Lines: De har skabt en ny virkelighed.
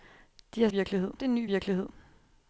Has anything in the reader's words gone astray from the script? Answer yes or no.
yes